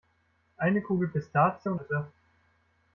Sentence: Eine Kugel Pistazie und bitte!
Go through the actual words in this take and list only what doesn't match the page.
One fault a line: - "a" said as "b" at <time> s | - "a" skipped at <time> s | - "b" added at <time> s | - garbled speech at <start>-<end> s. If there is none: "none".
none